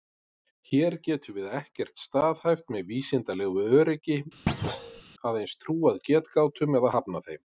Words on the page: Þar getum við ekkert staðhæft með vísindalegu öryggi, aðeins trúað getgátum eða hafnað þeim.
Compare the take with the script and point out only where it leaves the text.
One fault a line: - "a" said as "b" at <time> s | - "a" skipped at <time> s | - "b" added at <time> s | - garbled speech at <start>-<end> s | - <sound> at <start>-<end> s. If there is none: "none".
- "Þar" said as "Hér" at 0.7 s
- thud at 4.5-5.0 s